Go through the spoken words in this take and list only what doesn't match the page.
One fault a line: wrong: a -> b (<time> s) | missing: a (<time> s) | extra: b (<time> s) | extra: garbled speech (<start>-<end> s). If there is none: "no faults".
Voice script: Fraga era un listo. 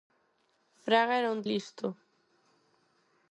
no faults